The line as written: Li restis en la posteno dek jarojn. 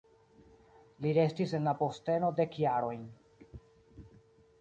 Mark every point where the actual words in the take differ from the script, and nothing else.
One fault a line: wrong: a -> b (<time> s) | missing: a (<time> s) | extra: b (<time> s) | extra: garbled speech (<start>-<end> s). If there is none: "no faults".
no faults